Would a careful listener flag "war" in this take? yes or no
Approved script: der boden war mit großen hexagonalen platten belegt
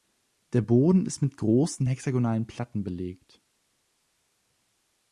yes